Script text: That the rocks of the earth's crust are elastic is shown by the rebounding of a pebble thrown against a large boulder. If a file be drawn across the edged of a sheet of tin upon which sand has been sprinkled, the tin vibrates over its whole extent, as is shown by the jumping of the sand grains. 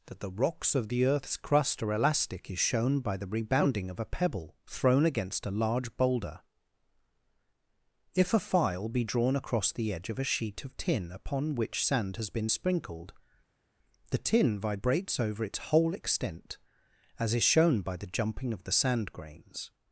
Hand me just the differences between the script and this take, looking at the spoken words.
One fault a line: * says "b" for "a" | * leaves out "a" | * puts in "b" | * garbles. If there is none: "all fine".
* says "edge" for "edged"